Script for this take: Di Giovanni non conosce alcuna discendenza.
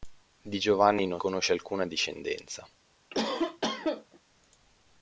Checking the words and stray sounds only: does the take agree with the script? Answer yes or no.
no